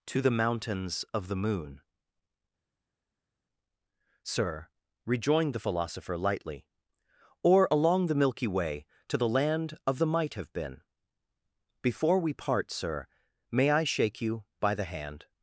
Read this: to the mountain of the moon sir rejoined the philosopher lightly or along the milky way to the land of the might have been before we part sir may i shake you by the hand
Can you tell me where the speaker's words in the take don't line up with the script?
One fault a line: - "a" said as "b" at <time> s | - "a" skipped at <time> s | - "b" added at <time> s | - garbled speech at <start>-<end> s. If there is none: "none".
- "mountain" said as "mountains" at 0.3 s